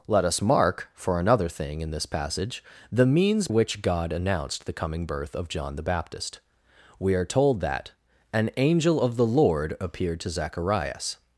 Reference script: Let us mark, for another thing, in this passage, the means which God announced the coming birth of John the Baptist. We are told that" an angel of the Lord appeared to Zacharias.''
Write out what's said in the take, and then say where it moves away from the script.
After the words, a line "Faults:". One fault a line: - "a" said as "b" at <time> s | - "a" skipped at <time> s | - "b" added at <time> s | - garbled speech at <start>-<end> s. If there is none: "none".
Let us mark, for another thing, in this passage, the means which God announced the coming birth of John the Baptist. We are told that" an angel of the Lord appeared to Zacharias.''
Faults:
none